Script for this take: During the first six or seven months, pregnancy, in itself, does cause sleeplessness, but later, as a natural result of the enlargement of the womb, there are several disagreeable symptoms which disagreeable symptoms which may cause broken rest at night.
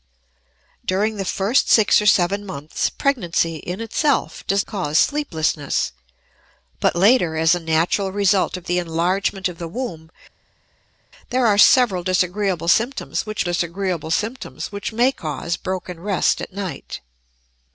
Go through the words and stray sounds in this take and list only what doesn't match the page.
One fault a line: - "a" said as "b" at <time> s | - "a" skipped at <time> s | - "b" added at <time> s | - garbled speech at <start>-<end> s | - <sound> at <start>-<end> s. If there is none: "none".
none